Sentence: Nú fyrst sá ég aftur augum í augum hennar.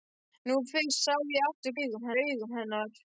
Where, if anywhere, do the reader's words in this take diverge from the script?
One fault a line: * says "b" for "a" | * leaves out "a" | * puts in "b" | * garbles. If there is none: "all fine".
all fine